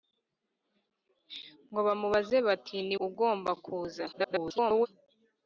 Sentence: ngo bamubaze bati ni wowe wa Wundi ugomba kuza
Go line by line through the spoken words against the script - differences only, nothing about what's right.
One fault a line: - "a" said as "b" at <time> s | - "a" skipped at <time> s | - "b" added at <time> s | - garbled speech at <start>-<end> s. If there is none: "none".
- "wowe wa Wundi" skipped at 3.0 s
- garbled speech at 4.1-4.9 s